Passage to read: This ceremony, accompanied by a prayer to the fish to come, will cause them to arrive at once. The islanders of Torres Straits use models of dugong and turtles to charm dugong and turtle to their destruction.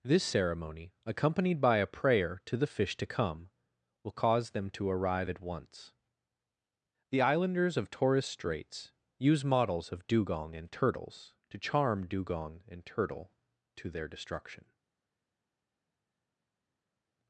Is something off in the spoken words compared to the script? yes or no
no